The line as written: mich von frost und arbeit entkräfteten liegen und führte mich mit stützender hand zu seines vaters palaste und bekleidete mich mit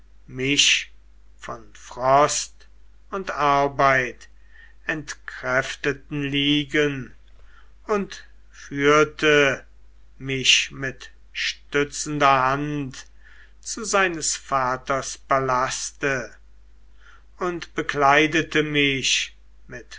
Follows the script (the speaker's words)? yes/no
yes